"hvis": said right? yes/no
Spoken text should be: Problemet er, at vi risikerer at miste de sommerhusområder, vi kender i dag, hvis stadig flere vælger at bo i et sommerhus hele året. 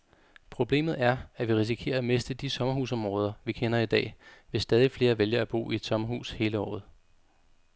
yes